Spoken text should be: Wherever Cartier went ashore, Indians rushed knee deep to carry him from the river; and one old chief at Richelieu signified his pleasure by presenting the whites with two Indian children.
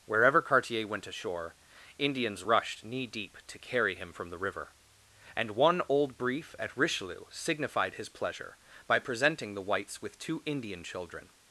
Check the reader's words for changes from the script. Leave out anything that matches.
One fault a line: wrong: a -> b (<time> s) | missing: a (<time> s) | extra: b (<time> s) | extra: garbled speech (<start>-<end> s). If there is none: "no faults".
wrong: chief -> brief (6.2 s)